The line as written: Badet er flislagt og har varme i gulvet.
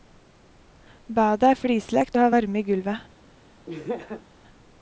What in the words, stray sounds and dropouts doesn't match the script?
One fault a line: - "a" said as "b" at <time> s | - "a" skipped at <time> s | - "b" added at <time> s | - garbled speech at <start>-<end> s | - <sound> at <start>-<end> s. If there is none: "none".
- laugh at 3.7-4.3 s